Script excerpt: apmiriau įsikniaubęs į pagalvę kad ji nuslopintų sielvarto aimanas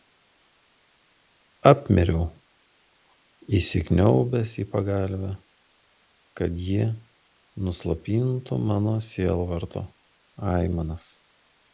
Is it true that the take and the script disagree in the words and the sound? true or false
true